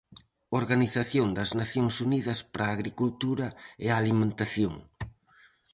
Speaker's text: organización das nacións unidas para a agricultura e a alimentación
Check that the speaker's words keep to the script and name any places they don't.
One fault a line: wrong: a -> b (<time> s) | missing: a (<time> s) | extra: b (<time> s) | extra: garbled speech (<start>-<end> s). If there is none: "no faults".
no faults